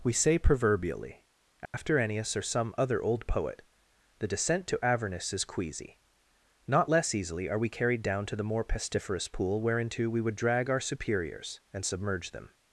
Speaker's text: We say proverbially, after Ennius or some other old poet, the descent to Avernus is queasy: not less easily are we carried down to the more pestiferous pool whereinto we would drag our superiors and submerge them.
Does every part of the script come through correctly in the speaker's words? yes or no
yes